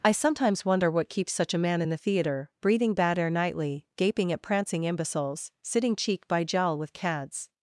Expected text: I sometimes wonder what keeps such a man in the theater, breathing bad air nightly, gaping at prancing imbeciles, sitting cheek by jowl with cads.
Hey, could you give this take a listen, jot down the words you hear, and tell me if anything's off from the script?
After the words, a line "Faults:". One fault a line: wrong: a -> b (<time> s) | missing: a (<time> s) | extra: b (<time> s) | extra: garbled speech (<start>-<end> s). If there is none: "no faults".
I sometimes wonder what keeps such a man in the theater, breathing bad air nightly, gaping at prancing imbeciles, sitting cheek by jowl with cads.
Faults:
no faults